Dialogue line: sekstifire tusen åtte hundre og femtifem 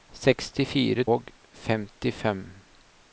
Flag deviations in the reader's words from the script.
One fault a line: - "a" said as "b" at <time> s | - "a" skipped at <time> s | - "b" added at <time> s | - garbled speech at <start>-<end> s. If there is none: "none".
- "tusen åtte hundre" skipped at 1.0 s